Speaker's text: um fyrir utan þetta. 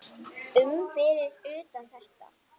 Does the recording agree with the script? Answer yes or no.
yes